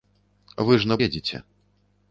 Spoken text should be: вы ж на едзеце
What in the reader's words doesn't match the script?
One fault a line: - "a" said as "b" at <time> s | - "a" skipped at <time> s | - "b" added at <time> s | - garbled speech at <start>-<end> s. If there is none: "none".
none